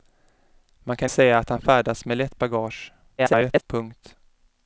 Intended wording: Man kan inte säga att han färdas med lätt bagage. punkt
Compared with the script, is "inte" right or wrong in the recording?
wrong